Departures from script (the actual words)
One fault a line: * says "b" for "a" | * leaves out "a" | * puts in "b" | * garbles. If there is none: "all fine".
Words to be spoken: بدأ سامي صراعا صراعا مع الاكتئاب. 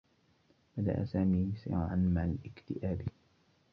* leaves out "صراعا"